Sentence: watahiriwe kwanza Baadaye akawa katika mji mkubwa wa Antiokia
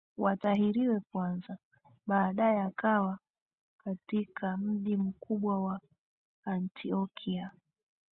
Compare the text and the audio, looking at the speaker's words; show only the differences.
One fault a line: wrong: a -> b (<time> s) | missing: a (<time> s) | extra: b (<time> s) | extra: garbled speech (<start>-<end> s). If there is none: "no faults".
no faults